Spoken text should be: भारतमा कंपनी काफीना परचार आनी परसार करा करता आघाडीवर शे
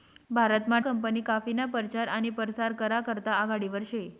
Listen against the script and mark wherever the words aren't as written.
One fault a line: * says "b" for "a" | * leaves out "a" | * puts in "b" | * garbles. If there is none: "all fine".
all fine